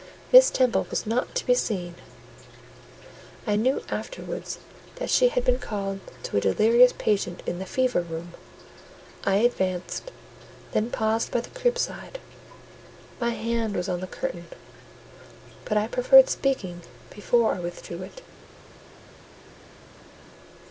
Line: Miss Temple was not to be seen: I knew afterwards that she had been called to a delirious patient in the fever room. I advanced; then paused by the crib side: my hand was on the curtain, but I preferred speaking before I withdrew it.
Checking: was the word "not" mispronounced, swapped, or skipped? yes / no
no